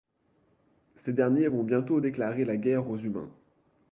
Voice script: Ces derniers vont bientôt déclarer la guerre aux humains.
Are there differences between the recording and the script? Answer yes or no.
no